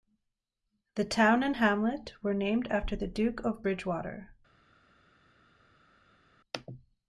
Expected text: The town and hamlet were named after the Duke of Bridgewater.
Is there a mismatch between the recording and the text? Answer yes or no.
no